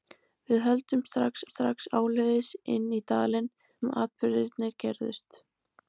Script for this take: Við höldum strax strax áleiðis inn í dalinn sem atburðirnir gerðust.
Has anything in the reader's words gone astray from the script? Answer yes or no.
no